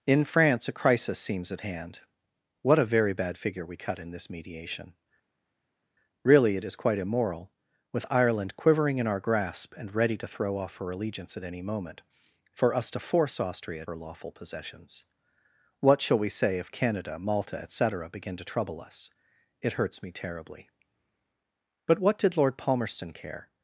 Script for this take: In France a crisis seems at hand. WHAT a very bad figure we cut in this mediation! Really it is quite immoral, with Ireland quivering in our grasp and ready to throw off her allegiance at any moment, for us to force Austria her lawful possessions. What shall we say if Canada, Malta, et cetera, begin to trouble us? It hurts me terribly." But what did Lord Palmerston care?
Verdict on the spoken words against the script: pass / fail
pass